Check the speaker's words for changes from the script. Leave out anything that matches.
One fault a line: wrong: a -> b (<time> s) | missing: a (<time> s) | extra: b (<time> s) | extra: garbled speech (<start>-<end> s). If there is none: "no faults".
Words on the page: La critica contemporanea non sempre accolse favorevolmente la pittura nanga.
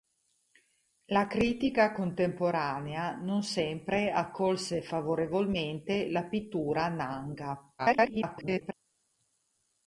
extra: garbled speech (7.8-8.7 s)